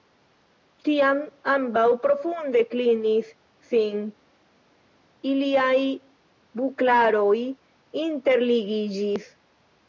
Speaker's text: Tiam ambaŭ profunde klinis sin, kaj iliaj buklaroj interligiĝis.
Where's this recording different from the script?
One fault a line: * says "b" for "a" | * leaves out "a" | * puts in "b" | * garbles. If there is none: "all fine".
* leaves out "kaj"